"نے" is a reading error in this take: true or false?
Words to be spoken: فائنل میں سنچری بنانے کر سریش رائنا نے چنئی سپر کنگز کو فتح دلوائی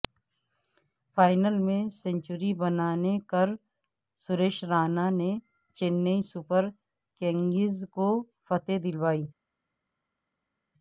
false